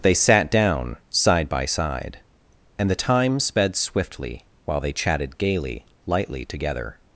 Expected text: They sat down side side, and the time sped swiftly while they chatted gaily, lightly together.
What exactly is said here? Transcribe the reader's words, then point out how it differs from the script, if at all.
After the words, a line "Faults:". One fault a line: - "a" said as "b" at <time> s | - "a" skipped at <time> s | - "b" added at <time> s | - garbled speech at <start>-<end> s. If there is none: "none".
They sat down side by side, and the time sped swiftly while they chatted gaily, lightly together.
Faults:
- "by" added at 1.5 s